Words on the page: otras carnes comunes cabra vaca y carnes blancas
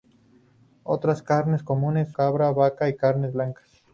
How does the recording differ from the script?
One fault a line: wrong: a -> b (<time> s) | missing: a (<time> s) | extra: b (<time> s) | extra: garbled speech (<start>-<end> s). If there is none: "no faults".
no faults